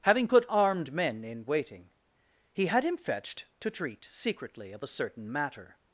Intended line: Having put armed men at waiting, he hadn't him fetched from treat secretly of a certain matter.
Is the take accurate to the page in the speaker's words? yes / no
no